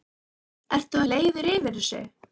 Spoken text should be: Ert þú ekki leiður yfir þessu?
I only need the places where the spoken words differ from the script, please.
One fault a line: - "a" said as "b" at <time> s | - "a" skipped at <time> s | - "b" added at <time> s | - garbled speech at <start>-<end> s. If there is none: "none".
- "ekki" skipped at 1.0 s